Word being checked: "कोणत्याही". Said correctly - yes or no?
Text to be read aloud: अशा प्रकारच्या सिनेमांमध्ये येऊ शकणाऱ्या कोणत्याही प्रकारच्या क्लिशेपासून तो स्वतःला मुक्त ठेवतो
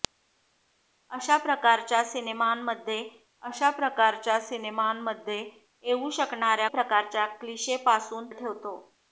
no